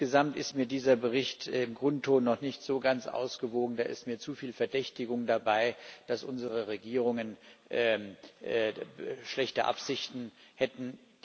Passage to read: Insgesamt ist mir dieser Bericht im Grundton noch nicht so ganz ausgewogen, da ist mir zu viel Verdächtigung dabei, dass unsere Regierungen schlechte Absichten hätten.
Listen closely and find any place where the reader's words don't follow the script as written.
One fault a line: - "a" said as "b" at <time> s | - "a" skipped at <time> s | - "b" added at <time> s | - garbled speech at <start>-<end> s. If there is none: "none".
none